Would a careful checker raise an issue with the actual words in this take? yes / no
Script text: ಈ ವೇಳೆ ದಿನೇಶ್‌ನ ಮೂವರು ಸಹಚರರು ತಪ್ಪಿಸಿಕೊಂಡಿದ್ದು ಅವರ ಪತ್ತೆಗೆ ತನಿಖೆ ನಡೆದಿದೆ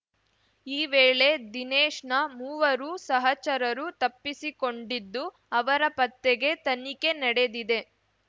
no